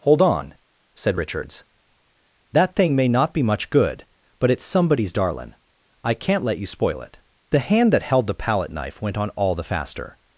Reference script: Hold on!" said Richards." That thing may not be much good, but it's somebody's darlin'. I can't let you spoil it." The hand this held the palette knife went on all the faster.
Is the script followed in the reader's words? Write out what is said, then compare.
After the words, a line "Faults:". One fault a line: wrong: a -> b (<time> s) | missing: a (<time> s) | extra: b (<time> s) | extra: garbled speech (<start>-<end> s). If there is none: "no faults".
Hold on!" said Richards." That thing may not be much good, but it's somebody's darlin'. I can't let you spoil it." The hand that held the palette knife went on all the faster.
Faults:
wrong: this -> that (7.9 s)